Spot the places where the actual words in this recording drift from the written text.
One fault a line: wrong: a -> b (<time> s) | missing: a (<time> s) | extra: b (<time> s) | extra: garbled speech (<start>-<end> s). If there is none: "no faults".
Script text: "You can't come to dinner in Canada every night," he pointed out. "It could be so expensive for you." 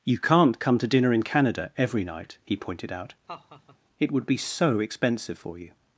wrong: could -> would (4.1 s)